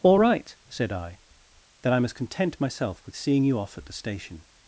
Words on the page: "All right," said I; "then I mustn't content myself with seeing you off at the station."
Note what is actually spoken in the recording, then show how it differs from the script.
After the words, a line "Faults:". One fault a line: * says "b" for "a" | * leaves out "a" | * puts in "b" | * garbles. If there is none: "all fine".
"All right," said I; "then I must content myself with seeing you off at the station."
Faults:
* says "must" for "mustn't"